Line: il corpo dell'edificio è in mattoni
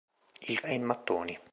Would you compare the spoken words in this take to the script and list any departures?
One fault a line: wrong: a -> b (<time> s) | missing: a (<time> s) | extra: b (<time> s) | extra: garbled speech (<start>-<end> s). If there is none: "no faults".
missing: corpo dell'edificio (0.6 s)